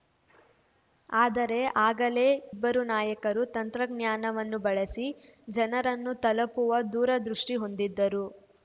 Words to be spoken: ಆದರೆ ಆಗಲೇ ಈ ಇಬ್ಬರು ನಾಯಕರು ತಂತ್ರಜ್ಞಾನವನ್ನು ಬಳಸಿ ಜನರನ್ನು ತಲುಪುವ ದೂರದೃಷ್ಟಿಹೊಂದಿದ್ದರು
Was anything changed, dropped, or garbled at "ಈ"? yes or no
yes